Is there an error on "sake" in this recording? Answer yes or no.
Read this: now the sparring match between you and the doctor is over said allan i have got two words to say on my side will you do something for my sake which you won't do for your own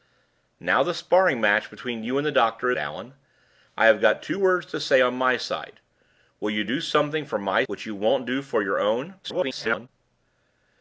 yes